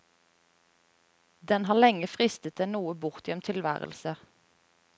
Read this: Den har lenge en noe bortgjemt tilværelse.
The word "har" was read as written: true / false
true